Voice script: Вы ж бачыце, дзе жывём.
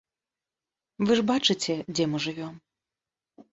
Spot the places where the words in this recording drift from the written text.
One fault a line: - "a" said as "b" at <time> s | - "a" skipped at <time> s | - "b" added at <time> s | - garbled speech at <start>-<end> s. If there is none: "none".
- "мы" added at 2.1 s